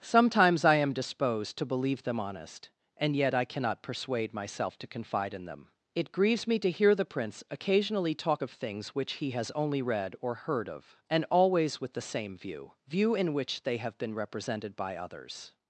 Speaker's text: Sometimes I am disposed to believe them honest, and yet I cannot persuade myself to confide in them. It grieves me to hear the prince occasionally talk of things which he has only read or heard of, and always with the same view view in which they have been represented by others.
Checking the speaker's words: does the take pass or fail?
pass